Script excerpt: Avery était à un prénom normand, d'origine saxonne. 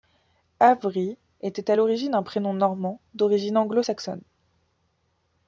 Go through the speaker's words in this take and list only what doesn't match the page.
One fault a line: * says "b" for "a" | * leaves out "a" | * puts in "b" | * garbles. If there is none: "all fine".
* puts in "l'origine"
* puts in "anglo"